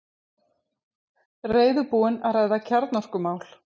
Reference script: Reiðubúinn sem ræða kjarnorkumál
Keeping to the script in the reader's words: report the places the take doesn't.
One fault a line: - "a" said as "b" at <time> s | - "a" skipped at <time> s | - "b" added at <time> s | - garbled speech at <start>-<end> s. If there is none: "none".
- "sem" said as "að" at 2.3 s